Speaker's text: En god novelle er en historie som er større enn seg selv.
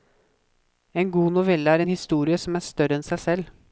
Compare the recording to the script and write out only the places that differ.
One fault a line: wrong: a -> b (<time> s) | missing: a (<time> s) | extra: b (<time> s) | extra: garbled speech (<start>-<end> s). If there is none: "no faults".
no faults